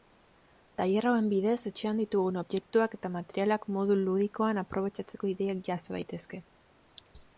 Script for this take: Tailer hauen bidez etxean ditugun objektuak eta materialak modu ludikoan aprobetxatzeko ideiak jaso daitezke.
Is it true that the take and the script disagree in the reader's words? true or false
false